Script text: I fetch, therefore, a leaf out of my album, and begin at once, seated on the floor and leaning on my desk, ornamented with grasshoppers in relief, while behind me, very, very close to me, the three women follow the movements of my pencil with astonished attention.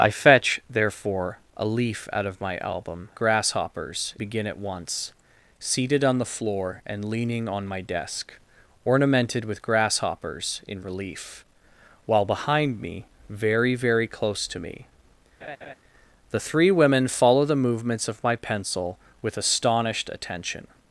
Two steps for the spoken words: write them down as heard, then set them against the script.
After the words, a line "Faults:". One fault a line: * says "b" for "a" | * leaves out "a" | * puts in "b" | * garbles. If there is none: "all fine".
I fetch, therefore, a leaf out of my album, grasshoppers begin at once, seated on the floor and leaning on my desk, ornamented with grasshoppers in relief, while behind me, very, very close to me, the three women follow the movements of my pencil with astonished attention.
Faults:
* says "grasshoppers" for "and"